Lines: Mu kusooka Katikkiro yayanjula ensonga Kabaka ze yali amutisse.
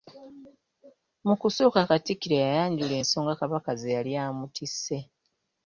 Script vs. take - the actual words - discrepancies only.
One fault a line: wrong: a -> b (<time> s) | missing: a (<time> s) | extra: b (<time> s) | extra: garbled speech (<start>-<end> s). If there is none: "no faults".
no faults